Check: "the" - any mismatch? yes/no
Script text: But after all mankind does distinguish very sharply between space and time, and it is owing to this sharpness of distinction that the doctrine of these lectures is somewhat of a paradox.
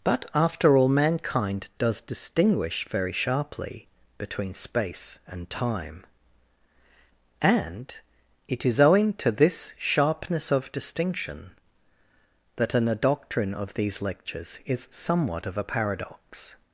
yes